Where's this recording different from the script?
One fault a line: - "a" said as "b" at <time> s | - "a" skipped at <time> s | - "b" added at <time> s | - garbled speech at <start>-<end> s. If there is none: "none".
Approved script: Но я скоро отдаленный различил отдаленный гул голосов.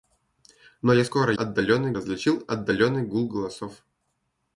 none